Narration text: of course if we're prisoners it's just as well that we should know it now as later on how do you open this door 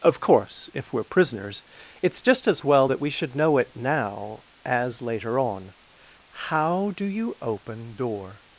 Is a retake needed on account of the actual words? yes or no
yes